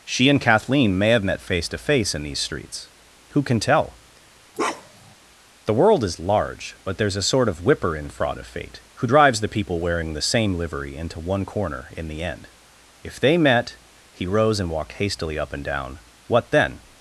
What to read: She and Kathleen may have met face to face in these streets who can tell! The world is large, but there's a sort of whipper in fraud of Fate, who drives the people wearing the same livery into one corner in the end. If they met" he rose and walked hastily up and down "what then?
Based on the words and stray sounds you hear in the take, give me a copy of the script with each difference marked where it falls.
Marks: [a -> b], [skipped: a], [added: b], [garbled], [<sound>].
She and Kathleen may have met face to face in these streets who can tell! [bark] The world is large, but there's a sort of whipper in fraud of Fate, who drives the people wearing the same livery into one corner in the end. If they met" he rose and walked hastily up and down "what then?